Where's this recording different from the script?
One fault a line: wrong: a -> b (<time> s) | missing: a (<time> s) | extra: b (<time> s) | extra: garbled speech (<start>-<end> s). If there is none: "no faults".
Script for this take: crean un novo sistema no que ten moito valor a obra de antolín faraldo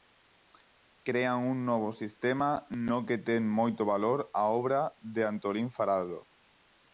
no faults